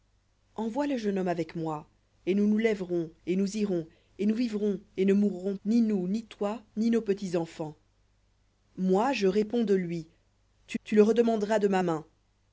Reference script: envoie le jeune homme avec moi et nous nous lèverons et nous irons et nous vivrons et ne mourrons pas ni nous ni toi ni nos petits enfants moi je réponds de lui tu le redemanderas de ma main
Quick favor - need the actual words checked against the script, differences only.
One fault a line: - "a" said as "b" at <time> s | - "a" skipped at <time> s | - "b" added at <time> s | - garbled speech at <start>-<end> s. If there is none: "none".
- "pas" skipped at 5.6 s
- "tu" added at 10.8 s